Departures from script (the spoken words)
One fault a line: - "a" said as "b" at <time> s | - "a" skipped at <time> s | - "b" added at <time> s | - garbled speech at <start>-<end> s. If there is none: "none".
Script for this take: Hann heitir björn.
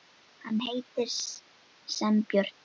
- "sem" added at 2.0 s